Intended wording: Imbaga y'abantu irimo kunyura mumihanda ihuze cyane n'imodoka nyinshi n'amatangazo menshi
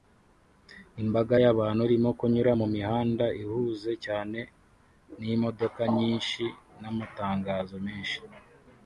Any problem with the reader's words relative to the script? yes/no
no